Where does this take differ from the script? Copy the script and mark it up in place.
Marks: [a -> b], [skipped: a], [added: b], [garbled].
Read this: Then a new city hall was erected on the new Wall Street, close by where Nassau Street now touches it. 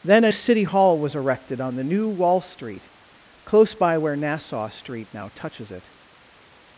Then a [skipped: new] city hall was erected on the new Wall Street, close by where Nassau Street now touches it.